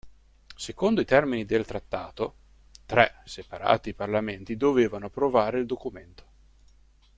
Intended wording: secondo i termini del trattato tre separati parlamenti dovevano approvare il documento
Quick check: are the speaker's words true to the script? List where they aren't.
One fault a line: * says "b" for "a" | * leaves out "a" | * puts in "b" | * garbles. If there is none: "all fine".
all fine